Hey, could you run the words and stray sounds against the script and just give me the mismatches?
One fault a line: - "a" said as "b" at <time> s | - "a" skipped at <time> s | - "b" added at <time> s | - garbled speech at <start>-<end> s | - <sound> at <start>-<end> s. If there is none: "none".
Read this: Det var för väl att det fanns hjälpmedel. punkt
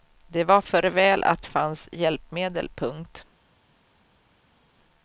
- "det" skipped at 1.4 s